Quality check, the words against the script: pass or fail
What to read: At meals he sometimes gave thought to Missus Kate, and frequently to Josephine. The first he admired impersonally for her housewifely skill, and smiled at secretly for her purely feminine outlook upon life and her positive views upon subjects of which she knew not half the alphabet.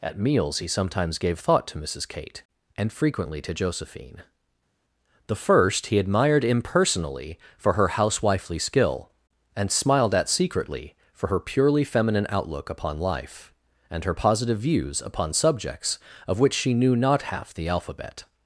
pass